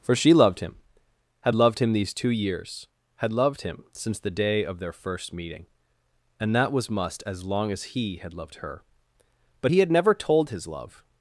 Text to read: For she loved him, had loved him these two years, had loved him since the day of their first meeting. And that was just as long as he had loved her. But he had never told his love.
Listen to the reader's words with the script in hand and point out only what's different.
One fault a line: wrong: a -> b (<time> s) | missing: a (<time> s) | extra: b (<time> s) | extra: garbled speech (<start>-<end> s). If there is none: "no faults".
wrong: just -> must (6.9 s)